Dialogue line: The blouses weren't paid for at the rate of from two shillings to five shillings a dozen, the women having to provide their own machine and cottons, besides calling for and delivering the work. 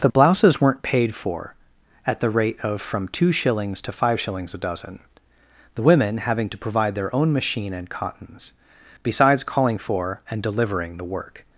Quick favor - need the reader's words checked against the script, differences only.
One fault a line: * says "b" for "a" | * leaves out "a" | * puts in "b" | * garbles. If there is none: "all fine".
all fine